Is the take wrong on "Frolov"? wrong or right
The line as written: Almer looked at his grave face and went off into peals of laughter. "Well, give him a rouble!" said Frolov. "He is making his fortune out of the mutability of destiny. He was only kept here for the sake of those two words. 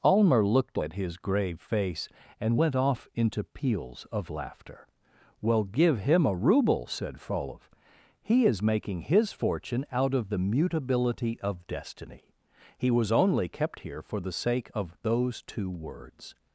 right